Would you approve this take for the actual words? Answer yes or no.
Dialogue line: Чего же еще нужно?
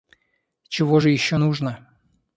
yes